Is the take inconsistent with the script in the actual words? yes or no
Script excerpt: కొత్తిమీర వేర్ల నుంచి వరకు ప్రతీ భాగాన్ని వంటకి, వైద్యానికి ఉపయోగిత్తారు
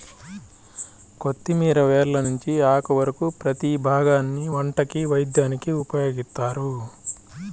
yes